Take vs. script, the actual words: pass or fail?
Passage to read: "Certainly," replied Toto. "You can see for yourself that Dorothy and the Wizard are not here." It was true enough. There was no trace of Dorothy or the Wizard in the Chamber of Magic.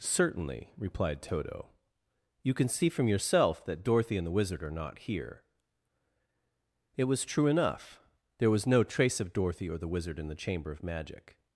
fail